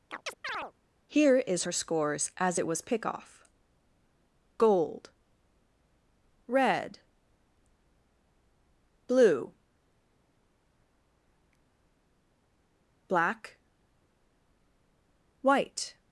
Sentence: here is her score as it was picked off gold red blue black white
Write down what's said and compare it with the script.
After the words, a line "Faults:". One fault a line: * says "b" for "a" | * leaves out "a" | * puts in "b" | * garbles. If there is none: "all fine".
here is her scores as it was pick off gold red blue black white
Faults:
* says "scores" for "score"
* says "pick" for "picked"